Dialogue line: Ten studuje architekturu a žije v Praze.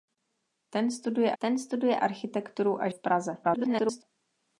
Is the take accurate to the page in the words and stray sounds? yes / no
no